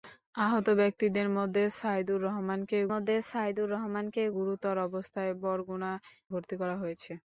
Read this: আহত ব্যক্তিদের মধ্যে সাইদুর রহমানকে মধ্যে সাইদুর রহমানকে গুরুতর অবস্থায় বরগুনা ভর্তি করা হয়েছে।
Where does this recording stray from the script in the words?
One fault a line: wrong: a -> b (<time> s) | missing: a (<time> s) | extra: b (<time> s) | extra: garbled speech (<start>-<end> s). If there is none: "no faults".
no faults